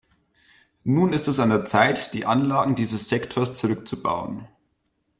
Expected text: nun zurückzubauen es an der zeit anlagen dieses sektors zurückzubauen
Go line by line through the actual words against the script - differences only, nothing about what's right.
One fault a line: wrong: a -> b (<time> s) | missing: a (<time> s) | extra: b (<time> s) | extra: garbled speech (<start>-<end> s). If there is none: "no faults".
wrong: zurückzubauen -> ist (1.1 s)
extra: die (2.1 s)